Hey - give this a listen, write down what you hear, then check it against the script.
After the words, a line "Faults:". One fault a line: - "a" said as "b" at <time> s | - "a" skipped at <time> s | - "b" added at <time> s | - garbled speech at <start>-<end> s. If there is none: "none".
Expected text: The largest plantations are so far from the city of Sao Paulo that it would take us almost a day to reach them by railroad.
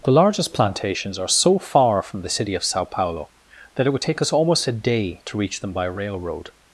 The largest plantations are so far from the city of Sao Paulo that it would take us almost a day to reach them by railroad.
Faults:
none